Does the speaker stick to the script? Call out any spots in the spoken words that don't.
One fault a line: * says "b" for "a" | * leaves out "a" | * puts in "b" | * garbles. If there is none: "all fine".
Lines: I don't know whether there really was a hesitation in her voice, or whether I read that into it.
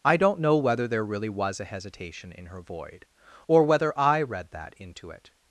* says "void" for "voice"